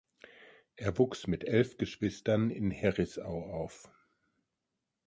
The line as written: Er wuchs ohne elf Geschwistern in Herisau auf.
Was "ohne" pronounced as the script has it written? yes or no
no